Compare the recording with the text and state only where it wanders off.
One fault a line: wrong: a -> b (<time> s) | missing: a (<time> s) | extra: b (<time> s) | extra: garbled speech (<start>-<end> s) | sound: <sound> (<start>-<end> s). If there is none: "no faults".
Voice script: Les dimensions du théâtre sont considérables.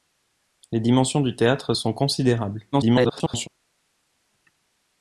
extra: garbled speech (2.7-3.5 s)